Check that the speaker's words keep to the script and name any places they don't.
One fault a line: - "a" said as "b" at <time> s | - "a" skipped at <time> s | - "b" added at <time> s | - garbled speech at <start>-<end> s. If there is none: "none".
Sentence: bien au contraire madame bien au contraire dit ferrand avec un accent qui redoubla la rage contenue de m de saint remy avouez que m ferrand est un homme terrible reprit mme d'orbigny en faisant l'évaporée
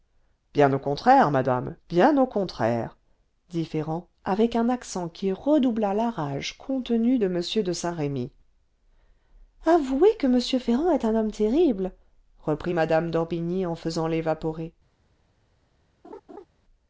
none